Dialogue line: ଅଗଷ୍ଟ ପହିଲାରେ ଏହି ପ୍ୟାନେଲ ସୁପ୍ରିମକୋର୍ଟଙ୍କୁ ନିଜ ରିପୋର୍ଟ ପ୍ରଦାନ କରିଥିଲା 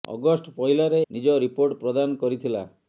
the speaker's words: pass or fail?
fail